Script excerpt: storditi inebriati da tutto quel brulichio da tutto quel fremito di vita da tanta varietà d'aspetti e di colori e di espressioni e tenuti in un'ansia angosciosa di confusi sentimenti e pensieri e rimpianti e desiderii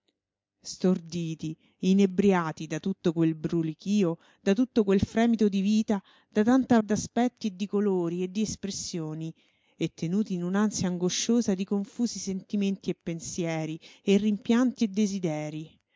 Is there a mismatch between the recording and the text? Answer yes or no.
yes